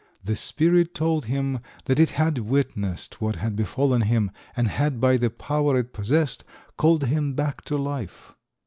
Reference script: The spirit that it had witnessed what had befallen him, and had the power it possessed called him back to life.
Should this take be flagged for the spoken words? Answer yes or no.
yes